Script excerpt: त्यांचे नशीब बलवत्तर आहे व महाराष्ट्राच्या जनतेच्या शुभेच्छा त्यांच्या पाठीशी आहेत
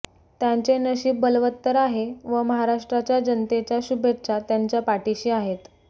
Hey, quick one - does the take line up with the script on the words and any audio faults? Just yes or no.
yes